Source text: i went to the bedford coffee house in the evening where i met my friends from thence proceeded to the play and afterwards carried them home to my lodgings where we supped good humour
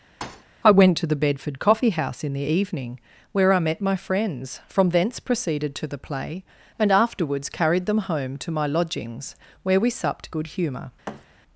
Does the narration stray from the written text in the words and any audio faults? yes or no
yes